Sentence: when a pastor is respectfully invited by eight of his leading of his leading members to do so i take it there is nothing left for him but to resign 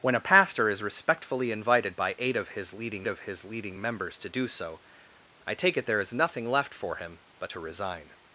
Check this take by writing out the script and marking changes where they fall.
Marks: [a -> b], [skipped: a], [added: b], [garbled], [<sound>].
when a pastor is respectfully invited by eight of his leading of his leading members to do so i take it there is nothing left for him but to resign